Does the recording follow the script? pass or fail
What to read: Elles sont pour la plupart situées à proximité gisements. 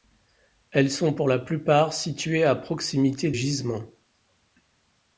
pass